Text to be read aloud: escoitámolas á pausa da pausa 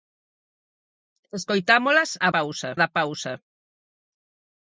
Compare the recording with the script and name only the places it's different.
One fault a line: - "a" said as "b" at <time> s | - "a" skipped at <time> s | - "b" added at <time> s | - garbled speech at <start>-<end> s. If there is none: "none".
none